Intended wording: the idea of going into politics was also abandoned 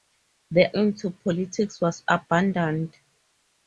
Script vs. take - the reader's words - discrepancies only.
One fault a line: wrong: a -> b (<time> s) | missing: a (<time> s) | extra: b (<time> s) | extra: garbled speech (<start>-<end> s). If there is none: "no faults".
missing: idea of going (0.8 s)
missing: also (2.0 s)